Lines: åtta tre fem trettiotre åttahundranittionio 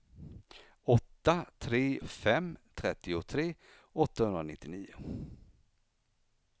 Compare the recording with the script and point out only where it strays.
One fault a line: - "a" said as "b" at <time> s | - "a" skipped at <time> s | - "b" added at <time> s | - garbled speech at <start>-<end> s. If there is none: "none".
none